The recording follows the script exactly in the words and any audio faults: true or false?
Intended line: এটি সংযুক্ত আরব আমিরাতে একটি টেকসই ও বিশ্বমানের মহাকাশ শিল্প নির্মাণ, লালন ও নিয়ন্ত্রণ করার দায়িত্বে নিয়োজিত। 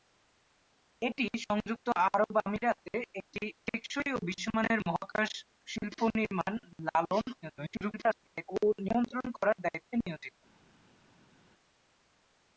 false